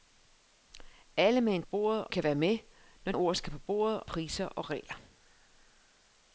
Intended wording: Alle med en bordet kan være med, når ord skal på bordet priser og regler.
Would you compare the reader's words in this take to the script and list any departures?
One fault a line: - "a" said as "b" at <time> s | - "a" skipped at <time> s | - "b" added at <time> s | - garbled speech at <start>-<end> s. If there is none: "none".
none